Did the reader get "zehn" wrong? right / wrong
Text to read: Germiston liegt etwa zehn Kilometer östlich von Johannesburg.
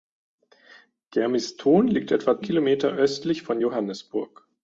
wrong